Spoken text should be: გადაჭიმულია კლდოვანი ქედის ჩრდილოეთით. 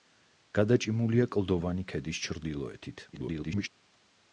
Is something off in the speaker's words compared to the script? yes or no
yes